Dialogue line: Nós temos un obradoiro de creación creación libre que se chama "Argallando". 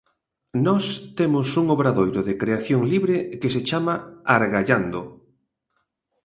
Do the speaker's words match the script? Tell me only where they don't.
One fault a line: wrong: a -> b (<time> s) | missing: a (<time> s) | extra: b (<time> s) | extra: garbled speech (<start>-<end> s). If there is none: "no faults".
missing: creación (2.8 s)